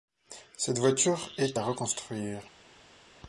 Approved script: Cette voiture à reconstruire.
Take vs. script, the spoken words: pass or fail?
fail